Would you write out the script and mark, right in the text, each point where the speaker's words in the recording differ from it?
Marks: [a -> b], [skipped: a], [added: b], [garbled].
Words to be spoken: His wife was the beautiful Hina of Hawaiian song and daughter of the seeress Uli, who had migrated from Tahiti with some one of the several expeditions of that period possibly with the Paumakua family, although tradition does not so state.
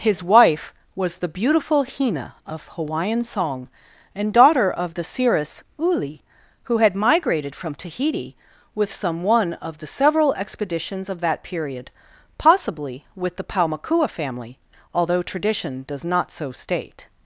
His wife was the beautiful Hina of Hawaiian song and daughter of the seeress Uli, who had migrated from Tahiti with some one of the several expeditions of that period possibly with the Paumakua family, although tradition does not so state.